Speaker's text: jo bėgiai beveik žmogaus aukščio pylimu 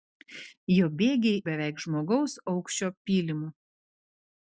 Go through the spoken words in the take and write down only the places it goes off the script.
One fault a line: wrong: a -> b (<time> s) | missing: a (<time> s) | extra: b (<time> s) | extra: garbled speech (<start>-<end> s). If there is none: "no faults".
no faults